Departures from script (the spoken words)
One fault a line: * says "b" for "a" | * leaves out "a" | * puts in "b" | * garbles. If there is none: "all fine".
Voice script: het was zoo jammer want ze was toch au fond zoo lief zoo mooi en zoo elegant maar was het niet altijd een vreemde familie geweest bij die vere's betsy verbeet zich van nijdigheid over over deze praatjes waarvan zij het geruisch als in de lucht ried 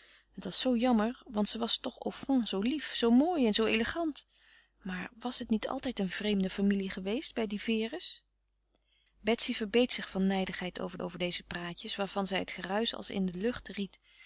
all fine